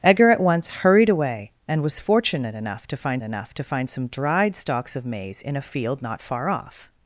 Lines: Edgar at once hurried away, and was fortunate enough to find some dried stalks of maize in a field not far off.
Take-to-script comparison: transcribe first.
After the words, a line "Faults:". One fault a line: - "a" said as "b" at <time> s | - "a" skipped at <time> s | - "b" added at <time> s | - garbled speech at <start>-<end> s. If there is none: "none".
Edgar at once hurried away, and was fortunate enough to find enough to find some dried stalks of maize in a field not far off.
Faults:
- "enough to find" added at 3.2 s